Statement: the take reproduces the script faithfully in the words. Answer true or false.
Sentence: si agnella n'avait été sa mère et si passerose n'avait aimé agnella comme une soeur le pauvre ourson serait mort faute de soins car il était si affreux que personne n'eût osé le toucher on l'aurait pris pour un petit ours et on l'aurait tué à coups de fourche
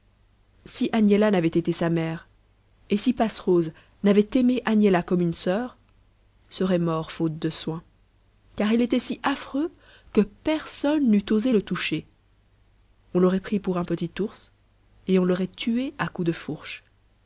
false